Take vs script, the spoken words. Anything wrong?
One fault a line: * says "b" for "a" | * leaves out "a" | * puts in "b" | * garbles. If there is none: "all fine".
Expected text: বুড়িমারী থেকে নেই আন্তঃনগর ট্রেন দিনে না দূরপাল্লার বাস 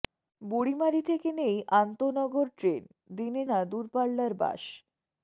all fine